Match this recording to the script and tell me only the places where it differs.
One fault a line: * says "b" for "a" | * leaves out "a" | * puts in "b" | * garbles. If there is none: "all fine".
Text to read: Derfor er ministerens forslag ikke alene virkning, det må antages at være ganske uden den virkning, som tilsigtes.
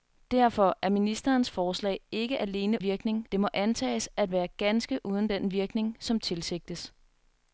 all fine